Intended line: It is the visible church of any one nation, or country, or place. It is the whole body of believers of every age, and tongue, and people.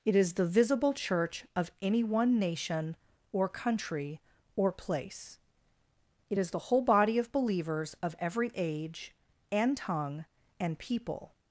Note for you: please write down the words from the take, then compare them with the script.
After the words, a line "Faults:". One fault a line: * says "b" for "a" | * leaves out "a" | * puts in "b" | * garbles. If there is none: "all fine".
It is the visible church of any one nation, or country, or place. It is the whole body of believers of every age, and tongue, and people.
Faults:
all fine